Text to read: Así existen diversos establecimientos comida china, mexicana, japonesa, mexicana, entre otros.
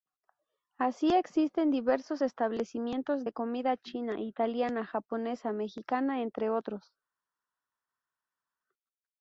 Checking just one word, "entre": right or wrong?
right